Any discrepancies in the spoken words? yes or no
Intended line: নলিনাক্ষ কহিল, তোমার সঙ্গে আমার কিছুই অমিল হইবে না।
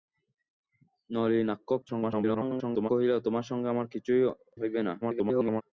yes